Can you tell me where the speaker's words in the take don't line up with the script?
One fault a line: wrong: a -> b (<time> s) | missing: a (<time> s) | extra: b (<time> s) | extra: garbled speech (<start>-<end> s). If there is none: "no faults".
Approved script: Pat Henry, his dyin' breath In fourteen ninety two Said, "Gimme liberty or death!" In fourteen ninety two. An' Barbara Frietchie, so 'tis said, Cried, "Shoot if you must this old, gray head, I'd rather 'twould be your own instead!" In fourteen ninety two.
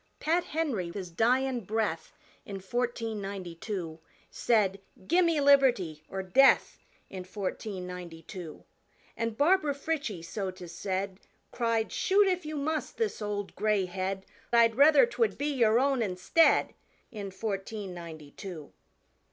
no faults